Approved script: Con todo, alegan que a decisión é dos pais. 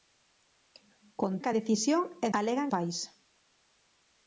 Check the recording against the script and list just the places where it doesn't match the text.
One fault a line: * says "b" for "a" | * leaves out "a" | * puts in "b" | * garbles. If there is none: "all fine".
* leaves out "todo alegan"
* says "alegan" for "dos"